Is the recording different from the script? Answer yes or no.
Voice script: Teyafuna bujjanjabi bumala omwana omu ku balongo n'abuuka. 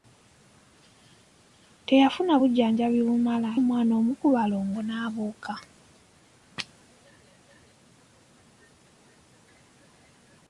no